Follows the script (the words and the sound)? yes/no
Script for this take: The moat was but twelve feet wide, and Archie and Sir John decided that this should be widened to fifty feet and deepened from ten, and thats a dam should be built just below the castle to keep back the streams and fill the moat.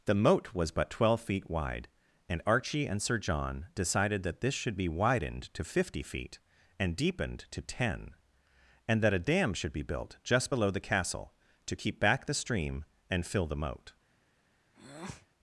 no